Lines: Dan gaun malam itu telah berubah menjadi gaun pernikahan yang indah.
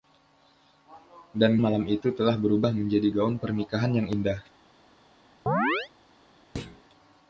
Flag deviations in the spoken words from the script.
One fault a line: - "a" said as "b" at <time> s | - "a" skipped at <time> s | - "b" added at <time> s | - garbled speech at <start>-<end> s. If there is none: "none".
- "gaun" skipped at 1.6 s